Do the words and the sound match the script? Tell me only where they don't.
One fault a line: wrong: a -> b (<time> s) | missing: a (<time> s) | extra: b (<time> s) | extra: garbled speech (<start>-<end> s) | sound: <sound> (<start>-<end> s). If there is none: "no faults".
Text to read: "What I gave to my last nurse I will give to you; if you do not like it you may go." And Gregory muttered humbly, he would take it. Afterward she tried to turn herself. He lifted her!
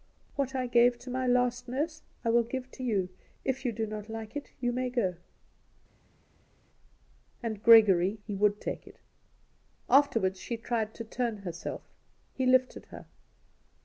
missing: muttered humbly (8.2 s)